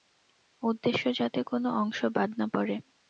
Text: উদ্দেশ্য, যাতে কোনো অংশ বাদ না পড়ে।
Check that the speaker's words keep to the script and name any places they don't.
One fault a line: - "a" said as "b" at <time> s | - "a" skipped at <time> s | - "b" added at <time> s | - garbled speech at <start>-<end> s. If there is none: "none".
none